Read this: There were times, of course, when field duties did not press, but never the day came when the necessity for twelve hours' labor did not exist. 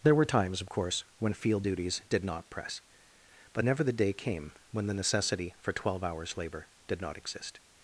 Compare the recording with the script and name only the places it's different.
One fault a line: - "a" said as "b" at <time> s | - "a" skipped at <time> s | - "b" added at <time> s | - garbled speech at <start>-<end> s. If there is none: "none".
none